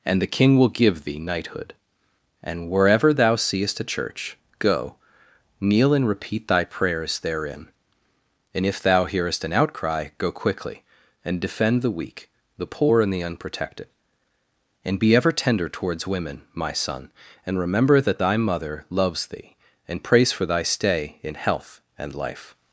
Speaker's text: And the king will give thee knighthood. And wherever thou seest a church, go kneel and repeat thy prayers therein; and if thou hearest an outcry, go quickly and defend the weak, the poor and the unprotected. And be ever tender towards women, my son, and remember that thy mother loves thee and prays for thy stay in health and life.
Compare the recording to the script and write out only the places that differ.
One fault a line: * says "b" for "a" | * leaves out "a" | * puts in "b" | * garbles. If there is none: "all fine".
all fine